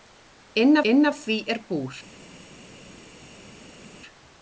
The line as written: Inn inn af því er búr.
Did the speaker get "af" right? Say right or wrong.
right